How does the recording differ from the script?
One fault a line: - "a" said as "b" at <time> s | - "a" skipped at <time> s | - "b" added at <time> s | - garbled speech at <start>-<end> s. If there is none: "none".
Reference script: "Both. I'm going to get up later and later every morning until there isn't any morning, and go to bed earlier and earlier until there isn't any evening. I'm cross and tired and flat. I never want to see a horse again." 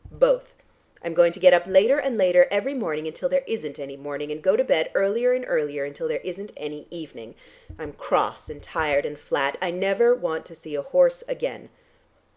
none